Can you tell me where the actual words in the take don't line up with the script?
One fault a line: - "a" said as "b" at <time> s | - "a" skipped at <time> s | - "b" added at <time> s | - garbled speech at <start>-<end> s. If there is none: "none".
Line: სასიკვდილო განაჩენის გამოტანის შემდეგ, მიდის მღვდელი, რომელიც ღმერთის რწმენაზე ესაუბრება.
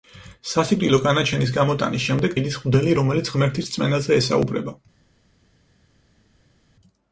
none